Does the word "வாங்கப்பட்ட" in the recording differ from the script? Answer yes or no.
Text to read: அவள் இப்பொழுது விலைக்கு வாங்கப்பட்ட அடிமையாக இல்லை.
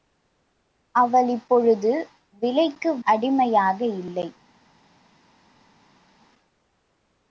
yes